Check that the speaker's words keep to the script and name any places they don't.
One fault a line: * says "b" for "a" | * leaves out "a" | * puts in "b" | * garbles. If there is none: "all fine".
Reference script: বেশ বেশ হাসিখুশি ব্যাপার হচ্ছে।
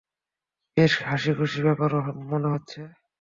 * leaves out "বেশ"
* puts in "মনে"